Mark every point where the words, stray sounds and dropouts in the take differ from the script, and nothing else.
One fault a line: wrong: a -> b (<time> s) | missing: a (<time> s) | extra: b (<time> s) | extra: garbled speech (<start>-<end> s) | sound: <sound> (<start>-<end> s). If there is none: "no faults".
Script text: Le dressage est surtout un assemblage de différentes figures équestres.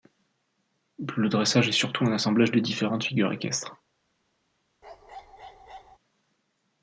sound: bark (4.8-6.0 s)